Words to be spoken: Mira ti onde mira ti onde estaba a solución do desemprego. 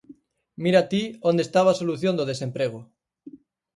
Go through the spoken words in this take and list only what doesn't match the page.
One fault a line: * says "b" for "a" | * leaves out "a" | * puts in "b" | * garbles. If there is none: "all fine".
* leaves out "mira ti onde"